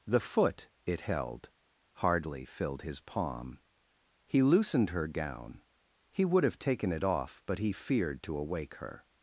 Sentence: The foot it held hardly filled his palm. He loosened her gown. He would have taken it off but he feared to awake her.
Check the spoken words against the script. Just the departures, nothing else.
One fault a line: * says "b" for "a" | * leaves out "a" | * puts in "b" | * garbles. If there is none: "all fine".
all fine